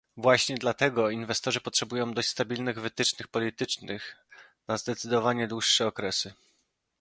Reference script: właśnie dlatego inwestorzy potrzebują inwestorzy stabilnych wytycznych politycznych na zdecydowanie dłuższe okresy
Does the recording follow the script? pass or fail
fail